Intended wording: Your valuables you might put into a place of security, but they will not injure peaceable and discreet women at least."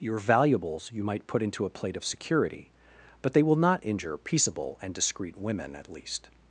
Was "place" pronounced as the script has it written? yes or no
no